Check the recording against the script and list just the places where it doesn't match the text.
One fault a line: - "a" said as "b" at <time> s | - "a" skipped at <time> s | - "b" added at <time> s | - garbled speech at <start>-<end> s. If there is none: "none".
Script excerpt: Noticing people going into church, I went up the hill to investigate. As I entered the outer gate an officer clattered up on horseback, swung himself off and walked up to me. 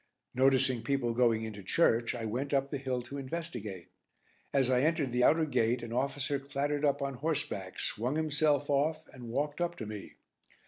none